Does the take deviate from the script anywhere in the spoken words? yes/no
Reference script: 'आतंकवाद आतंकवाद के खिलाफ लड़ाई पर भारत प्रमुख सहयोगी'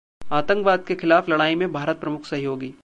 yes